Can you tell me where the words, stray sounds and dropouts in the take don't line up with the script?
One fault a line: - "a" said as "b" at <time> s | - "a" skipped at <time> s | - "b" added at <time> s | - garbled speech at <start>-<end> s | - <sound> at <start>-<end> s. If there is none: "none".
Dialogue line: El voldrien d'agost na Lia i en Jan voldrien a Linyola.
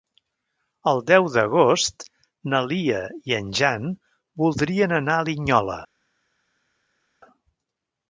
- "voldrien" said as "deu" at 1.1 s
- "anar" added at 5.0 s